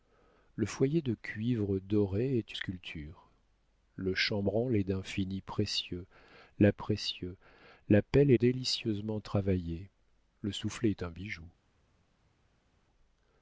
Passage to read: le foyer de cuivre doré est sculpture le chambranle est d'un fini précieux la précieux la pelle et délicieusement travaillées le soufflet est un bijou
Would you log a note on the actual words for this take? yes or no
no